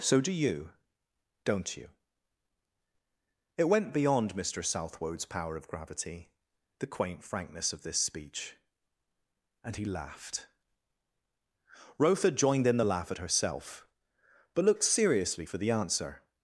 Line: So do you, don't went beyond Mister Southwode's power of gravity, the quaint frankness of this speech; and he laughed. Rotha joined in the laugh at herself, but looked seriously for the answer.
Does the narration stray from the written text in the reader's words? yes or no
yes